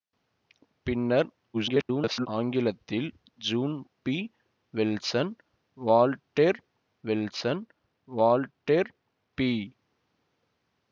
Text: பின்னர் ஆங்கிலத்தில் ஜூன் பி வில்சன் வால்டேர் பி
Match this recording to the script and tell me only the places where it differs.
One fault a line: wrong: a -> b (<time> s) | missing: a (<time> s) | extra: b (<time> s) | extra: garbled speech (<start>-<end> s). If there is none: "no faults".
extra: garbled speech (1.5-2.3 s)
extra: வில்சன் வால்டேர் (7.0 s)